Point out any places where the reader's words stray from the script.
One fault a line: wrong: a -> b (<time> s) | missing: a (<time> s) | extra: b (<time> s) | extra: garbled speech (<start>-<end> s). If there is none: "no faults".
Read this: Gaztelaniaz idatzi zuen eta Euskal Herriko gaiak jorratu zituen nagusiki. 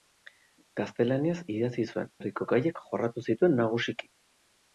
missing: eta Euskal (2.1 s)